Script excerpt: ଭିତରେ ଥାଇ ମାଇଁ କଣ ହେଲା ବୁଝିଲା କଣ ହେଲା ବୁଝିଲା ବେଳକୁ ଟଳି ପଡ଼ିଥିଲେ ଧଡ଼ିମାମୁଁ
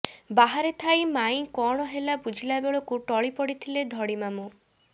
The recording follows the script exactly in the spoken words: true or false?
false